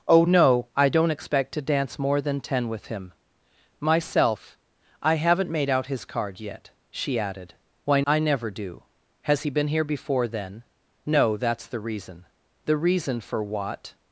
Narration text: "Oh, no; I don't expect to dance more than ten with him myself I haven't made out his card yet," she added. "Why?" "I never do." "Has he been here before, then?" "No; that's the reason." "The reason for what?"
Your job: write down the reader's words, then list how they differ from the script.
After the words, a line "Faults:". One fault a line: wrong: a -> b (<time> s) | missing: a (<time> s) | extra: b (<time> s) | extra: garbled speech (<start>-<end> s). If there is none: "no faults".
"Oh, no; I don't expect to dance more than ten with him myself I haven't made out his card yet," she added. "Why?" "I never do." "Has he been here before, then?" "No; that's the reason." "The reason for what?"
Faults:
no faults